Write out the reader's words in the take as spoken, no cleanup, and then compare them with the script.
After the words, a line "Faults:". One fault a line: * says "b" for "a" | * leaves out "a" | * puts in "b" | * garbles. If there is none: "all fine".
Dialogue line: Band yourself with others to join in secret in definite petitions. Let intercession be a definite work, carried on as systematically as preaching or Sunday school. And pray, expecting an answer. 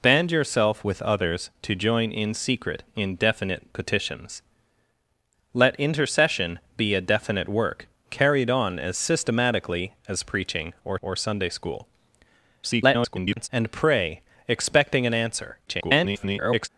Band yourself with others to join in secret in definite petitions. Let intercession be a definite work, carried on as systematically as preaching or or Sunday school. [garbled] And pray, expecting an answer. [garbled]
Faults:
* puts in "or"
* garbles
* garbles